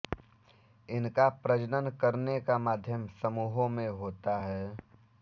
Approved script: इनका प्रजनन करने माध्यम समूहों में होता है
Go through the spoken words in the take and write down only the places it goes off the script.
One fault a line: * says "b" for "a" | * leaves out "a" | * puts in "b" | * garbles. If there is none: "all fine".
* puts in "का"